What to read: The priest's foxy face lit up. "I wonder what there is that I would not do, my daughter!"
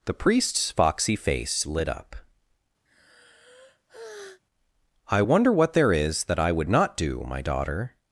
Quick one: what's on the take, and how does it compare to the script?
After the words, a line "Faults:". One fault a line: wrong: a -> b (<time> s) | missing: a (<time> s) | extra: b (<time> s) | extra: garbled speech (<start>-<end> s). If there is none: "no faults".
The priest's foxy face lit up. "I wonder what there is that I would not do, my daughter!"
Faults:
no faults